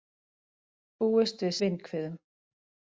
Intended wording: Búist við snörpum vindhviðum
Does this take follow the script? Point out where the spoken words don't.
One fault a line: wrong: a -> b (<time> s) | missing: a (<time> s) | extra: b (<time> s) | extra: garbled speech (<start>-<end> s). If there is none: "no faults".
missing: snörpum (1.6 s)